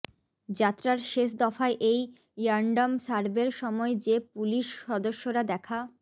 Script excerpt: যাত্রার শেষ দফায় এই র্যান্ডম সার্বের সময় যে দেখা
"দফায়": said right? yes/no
yes